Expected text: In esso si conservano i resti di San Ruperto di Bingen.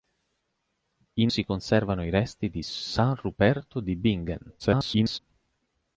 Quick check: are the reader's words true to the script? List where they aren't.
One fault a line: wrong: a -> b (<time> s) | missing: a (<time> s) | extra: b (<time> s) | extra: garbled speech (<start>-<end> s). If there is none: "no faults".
missing: esso (1.3 s)
extra: garbled speech (4.6-5.2 s)